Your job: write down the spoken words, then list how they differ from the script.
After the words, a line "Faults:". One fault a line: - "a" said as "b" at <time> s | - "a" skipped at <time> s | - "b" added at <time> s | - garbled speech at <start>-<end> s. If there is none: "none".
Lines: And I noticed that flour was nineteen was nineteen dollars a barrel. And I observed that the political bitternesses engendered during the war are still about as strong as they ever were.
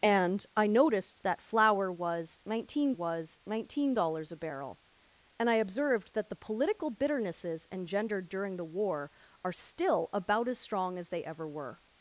And I noticed that flour was nineteen was nineteen dollars a barrel. And I observed that the political bitternesses engendered during the war are still about as strong as they ever were.
Faults:
none